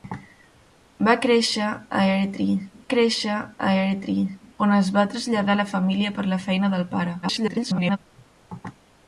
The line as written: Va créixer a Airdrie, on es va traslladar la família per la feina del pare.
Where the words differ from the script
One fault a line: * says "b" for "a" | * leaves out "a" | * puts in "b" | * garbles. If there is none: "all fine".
* puts in "créixer a Airdrie"
* garbles